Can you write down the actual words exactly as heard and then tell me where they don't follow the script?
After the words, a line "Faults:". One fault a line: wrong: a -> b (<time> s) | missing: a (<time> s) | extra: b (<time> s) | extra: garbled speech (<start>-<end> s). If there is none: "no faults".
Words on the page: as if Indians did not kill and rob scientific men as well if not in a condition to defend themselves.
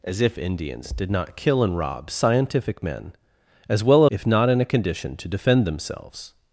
as if Indians did not kill and rob scientific men as well if not in a condition to defend themselves.
Faults:
no faults